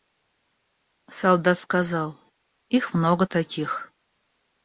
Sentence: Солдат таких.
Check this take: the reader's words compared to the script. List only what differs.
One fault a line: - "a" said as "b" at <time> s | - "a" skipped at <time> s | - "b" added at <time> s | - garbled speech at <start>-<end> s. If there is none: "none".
- "сказал их много" added at 1.6 s